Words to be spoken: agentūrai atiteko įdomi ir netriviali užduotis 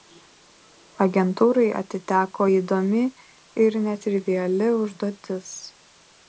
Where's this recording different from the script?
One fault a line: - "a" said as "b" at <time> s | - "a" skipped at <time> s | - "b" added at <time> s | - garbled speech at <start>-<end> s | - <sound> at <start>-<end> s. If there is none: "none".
none